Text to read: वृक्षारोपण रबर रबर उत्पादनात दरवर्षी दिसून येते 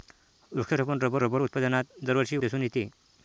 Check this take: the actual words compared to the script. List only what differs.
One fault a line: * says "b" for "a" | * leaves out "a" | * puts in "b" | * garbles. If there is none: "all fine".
all fine